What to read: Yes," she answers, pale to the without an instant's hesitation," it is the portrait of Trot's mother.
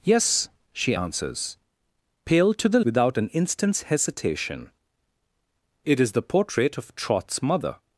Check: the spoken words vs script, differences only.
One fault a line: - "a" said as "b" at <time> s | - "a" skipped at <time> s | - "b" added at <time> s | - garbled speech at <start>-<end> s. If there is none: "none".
none